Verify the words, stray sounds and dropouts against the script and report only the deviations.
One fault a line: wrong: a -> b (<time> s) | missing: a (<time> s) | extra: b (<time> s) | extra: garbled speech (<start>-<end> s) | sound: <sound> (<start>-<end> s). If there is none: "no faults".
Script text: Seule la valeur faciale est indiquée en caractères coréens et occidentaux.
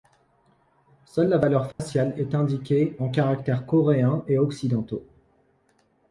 sound: dropout (1.7-1.8 s)